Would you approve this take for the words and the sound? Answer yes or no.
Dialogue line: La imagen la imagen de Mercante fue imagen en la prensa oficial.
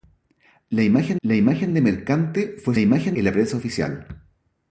yes